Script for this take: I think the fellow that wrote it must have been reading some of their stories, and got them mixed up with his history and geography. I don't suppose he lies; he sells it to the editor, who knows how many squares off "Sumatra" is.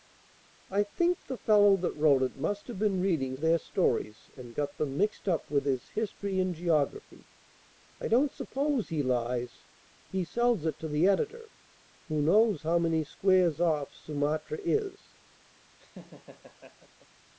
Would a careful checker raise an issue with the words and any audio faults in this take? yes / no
yes